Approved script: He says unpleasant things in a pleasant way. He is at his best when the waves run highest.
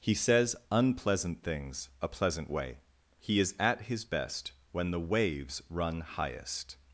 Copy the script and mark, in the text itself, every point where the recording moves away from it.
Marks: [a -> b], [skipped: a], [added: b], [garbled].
He says unpleasant things [skipped: in] a pleasant way. He is at his best when the waves run highest.